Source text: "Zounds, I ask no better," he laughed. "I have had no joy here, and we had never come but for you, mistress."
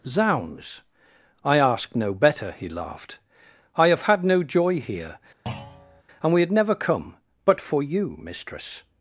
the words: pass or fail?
pass